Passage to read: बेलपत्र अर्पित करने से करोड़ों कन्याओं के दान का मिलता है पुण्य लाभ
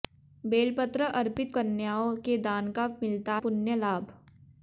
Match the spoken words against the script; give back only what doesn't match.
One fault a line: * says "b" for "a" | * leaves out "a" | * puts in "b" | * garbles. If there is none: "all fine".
* leaves out "करने से करोड़ों"
* leaves out "है"